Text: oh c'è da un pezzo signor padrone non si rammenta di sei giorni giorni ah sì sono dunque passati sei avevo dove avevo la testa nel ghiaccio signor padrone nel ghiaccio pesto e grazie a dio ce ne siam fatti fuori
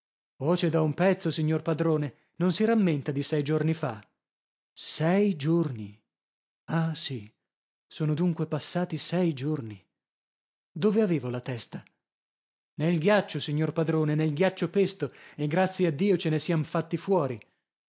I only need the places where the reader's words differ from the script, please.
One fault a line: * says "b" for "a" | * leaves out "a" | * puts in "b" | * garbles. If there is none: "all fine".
* puts in "fa sei"
* says "giorni" for "avevo"